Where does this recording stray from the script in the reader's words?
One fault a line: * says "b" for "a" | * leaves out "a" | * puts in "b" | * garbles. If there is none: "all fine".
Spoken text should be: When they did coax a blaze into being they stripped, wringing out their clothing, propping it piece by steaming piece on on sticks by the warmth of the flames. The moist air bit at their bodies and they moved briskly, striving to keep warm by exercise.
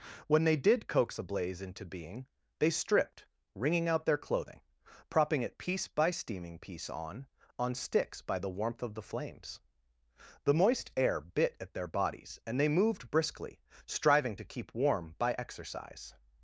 all fine